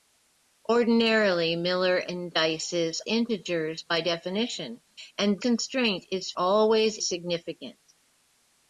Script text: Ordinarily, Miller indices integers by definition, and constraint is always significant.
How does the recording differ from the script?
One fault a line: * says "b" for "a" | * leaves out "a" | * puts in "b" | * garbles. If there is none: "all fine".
all fine